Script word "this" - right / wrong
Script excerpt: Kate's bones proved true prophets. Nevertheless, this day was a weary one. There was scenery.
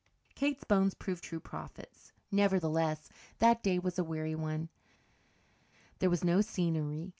wrong